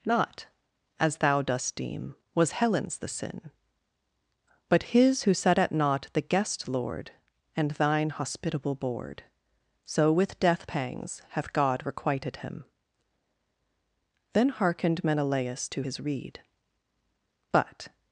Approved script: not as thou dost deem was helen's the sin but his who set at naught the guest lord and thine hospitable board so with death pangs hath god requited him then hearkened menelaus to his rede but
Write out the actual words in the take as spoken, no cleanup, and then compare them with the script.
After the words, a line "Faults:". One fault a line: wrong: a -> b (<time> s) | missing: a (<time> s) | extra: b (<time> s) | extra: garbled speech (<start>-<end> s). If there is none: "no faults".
not as thou dost deem was helen's the sin but his who set at naught the guest lord and thine hospitable board so with death pangs hath god requited him then hearkened menelaus to his rede but
Faults:
no faults